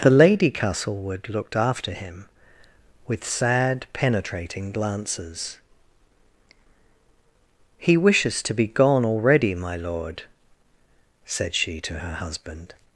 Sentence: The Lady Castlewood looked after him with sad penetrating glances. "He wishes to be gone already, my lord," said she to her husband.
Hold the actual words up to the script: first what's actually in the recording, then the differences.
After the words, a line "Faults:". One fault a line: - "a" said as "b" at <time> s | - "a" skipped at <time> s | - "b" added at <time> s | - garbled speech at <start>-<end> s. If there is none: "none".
The Lady Castlewood looked after him with sad penetrating glances. "He wishes to be gone already, my lord," said she to her husband.
Faults:
none